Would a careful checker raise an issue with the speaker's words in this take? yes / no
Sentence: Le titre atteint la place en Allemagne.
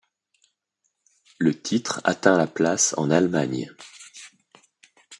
no